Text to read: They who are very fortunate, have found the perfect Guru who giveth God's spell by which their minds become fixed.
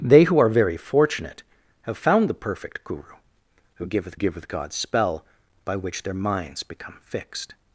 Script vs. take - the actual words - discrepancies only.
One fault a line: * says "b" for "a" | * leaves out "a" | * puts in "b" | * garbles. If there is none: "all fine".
* puts in "giveth"